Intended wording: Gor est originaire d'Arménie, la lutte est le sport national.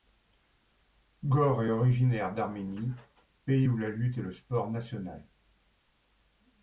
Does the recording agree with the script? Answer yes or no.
no